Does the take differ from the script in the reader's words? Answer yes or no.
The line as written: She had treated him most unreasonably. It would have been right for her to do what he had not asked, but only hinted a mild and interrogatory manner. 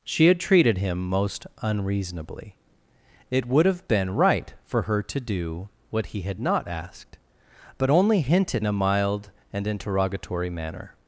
no